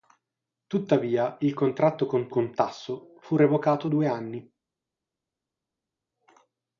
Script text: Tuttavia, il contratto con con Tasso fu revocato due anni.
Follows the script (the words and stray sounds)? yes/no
yes